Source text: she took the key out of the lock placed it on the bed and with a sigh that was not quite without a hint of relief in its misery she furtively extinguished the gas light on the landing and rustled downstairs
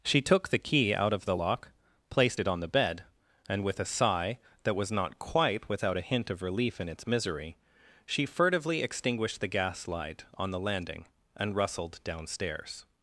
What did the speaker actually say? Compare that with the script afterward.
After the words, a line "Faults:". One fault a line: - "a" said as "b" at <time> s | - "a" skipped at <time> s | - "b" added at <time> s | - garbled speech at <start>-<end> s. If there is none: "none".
she took the key out of the lock placed it on the bed and with a sigh that was not quite without a hint of relief in its misery she furtively extinguished the gas light on the landing and rustled downstairs
Faults:
none